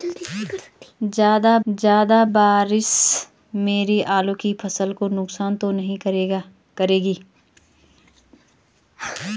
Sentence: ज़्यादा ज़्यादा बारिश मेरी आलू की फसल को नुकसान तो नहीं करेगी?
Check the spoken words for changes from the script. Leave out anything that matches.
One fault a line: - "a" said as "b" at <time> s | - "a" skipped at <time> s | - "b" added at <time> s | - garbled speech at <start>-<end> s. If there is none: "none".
none